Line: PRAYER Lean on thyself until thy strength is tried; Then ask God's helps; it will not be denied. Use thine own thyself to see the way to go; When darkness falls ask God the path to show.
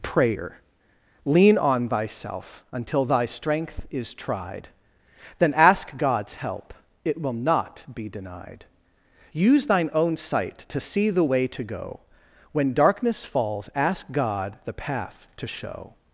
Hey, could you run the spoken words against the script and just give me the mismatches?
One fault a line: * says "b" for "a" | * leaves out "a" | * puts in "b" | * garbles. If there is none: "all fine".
* says "help" for "helps"
* says "sight" for "thyself"